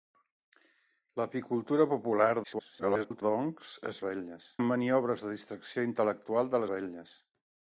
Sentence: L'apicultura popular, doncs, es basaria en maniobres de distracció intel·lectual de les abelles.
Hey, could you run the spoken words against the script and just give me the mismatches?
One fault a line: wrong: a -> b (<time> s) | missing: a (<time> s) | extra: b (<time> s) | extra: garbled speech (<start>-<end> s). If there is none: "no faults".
extra: garbled speech (2.4-3.2 s)
wrong: basaria -> abelles (4.0 s)
missing: les (6.7 s)